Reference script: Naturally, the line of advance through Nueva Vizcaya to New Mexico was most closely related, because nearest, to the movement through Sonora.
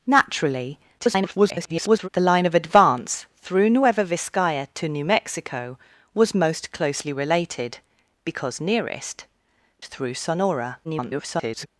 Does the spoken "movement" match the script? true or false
false